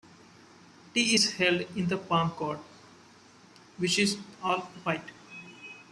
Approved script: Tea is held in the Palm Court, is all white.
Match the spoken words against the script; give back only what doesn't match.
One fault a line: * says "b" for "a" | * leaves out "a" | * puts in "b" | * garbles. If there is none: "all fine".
* puts in "which"